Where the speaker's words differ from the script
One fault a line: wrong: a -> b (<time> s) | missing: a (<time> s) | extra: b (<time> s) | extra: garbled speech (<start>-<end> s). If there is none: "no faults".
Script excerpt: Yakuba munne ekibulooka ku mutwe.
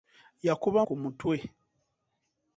missing: munne ekibulooka (0.8 s)